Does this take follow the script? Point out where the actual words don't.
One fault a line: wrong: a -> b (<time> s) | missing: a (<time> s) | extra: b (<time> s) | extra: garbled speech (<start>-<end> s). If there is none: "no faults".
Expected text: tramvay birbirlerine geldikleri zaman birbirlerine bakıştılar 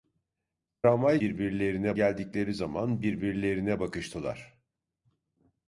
no faults